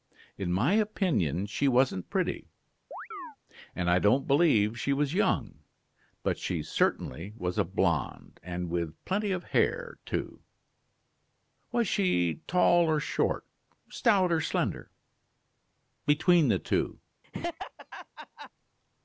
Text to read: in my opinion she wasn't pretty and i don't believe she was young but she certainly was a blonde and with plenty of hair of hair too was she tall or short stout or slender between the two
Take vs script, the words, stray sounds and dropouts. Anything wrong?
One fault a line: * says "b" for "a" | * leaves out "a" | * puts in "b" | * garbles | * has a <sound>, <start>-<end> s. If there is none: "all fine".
* has a chirp, 2.9-3.4 s
* leaves out "of hair"
* has a laugh, 17.2-18.5 s